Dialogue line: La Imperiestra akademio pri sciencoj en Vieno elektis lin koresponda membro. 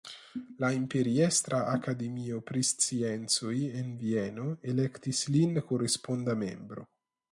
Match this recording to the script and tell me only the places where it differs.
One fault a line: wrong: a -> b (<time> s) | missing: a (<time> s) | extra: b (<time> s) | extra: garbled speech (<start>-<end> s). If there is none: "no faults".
no faults